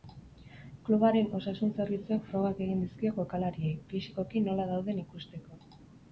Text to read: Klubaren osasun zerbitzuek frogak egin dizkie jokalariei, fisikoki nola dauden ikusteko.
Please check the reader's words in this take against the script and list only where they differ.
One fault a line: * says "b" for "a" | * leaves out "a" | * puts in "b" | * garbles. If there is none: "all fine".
all fine